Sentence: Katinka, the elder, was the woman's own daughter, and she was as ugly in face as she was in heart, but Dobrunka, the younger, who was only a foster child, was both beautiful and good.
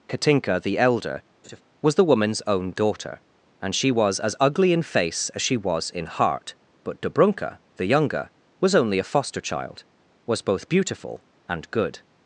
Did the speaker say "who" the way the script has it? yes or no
no